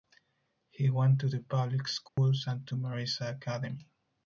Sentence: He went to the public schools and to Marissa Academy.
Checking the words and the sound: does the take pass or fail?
fail